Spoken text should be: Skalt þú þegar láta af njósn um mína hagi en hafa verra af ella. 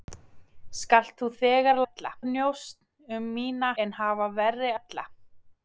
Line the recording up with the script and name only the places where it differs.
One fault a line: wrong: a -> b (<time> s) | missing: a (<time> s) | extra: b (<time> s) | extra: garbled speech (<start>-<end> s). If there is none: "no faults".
wrong: láta -> ella (1.8 s)
missing: hagi (3.7 s)
missing: af (4.7 s)